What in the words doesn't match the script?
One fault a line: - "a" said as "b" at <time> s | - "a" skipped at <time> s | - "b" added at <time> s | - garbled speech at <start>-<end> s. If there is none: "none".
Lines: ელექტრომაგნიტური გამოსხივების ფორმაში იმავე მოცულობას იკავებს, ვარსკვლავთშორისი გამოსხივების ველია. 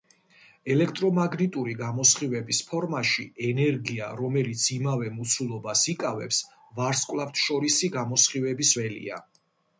- "ენერგია რომელიც" added at 3.5 s